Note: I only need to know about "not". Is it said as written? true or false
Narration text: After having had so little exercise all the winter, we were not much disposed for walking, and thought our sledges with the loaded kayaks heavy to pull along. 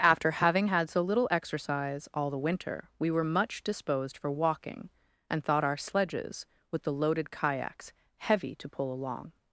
false